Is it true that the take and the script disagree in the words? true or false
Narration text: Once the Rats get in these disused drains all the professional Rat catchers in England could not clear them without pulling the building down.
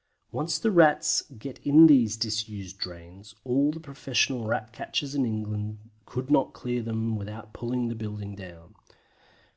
false